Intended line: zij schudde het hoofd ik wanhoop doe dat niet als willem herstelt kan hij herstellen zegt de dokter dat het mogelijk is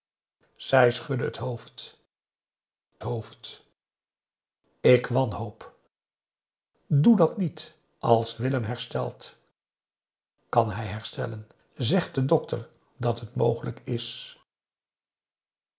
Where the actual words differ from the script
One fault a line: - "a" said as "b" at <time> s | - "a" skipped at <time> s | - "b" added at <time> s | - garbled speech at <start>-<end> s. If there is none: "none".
- "hoofd" added at 3.0 s